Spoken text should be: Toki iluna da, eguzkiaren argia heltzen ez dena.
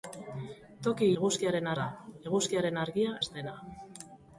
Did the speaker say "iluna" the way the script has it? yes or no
no